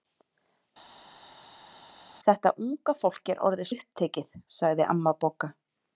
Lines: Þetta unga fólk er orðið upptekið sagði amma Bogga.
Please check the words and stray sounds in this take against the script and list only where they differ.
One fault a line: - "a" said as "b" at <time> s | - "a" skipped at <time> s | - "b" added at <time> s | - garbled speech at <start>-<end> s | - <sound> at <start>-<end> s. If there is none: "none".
none